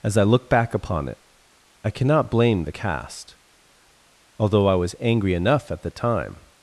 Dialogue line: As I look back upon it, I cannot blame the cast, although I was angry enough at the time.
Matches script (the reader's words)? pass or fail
pass